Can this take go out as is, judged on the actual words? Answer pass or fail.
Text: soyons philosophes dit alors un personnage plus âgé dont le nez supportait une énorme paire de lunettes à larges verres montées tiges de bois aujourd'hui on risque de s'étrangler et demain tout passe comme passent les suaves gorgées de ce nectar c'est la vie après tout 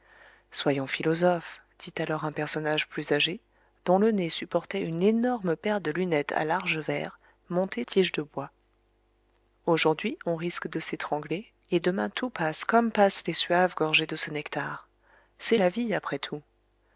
pass